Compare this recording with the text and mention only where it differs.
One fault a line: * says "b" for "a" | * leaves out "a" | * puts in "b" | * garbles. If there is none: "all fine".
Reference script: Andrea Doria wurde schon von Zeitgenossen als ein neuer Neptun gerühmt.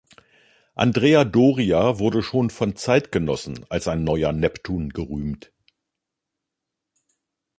all fine